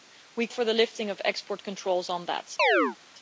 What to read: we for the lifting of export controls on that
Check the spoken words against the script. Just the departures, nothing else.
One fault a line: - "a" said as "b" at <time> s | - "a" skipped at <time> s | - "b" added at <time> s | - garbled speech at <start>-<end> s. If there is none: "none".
none